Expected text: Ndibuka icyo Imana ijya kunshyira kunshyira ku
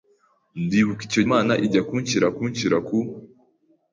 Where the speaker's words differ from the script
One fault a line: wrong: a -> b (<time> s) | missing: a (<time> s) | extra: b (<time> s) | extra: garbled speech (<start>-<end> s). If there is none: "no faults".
no faults